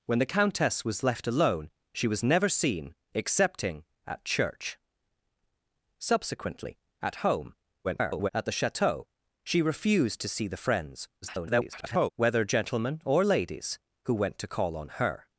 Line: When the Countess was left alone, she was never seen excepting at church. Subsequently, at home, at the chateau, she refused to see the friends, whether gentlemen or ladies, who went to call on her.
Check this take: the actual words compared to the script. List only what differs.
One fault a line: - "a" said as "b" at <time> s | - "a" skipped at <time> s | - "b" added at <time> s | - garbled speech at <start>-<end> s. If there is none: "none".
- garbled speech at 7.8-8.3 s
- garbled speech at 11.2-12.1 s